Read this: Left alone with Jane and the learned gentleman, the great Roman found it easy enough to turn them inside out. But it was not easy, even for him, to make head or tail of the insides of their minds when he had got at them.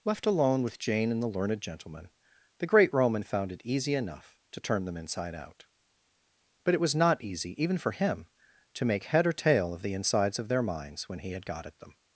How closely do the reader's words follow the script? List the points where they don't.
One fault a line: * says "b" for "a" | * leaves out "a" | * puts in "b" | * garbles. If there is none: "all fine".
all fine